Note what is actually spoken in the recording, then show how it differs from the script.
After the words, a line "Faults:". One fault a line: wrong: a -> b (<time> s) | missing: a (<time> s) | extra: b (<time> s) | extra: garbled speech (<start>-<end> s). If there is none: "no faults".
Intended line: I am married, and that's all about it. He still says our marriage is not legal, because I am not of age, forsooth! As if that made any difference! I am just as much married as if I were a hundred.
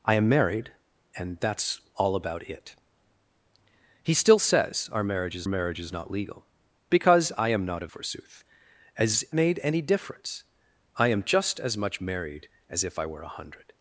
I am married, and that's all about it. He still says our marriage is marriage is not legal, because I am not of forsooth! As made any difference! I am just as much married as if I were a hundred.
Faults:
extra: marriage is (5.5 s)
missing: age (7.9 s)
missing: if that (9.2 s)